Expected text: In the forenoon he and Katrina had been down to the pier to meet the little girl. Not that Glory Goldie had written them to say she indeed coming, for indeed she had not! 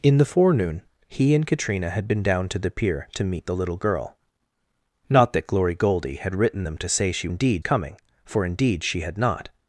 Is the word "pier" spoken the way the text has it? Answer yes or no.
yes